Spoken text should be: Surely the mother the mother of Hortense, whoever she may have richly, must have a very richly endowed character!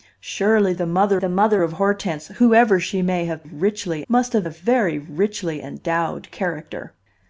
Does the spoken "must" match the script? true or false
true